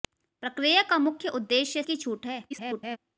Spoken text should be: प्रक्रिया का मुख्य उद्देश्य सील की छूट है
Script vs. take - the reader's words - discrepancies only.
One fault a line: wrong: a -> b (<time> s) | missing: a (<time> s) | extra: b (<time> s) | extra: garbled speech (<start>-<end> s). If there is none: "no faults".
missing: सील (1.8 s)
extra: garbled speech (2.5-3.0 s)